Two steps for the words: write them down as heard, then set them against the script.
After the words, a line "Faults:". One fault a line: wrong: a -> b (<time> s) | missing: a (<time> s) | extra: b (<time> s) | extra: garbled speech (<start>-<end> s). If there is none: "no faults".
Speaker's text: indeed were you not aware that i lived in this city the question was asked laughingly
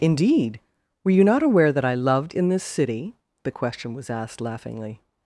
indeed were you not aware that i loved in this city the question was asked laughingly
Faults:
wrong: lived -> loved (1.9 s)